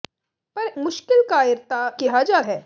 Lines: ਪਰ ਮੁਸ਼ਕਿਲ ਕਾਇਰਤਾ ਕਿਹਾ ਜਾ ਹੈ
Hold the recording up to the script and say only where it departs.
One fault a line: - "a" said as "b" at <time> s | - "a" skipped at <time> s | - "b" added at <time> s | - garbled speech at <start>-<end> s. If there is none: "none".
none